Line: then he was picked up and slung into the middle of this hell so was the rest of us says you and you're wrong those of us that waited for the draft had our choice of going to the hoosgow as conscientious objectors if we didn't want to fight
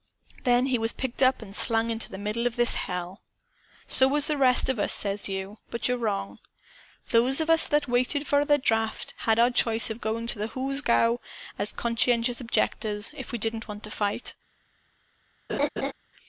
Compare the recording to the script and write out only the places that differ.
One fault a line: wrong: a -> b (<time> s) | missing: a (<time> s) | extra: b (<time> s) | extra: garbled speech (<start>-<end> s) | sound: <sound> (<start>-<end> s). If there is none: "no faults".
wrong: and -> but (5.7 s)
sound: laugh (15.5-15.9 s)